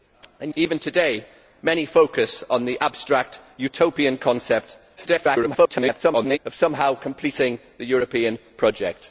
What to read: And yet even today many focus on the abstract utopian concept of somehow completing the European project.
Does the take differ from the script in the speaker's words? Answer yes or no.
yes